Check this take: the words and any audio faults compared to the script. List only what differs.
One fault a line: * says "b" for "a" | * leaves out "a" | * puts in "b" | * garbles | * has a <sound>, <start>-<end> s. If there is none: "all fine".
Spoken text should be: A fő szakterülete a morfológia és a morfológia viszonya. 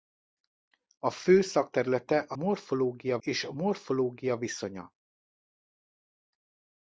all fine